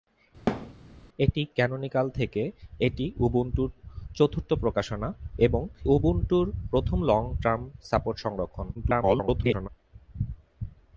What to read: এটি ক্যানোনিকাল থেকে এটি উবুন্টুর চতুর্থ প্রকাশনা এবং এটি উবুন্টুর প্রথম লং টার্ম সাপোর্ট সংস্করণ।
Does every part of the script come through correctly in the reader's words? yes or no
no